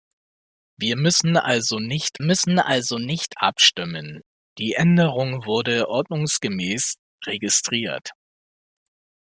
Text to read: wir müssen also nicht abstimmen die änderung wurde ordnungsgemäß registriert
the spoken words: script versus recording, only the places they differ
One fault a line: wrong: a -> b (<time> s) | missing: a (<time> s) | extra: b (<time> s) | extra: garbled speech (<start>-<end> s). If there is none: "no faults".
extra: müssen also nicht (2.2 s)